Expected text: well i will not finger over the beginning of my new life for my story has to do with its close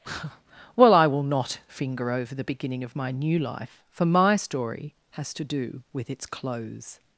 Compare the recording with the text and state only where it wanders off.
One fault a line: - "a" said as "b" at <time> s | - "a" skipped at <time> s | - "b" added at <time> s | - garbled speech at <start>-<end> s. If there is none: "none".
none